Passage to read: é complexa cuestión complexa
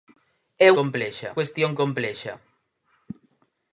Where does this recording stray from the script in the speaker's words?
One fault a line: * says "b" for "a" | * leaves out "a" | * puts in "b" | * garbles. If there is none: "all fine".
all fine